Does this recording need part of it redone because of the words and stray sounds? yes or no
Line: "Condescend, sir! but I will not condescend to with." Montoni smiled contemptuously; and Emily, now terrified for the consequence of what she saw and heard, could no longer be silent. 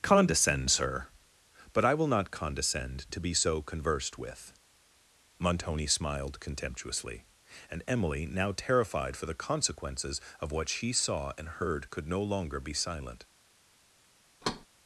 yes